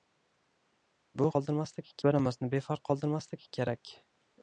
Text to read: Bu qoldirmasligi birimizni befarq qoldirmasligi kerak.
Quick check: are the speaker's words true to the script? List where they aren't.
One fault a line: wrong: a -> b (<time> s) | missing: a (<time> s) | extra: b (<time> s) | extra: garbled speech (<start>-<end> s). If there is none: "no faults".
no faults